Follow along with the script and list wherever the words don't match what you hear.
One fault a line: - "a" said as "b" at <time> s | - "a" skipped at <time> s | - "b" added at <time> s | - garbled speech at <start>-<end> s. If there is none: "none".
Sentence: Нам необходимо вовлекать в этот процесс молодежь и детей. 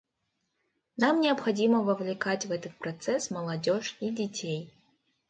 none